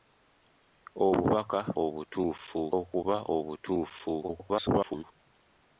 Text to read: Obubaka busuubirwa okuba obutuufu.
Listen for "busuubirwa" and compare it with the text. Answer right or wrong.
wrong